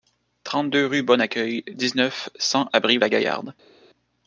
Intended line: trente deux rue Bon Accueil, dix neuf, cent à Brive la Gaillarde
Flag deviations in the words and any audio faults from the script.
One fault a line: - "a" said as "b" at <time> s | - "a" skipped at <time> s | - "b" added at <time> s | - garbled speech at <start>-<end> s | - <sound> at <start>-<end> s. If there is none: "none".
none